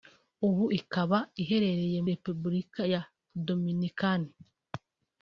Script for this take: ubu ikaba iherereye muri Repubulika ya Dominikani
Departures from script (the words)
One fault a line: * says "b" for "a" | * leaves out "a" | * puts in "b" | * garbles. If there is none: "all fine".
* leaves out "muri"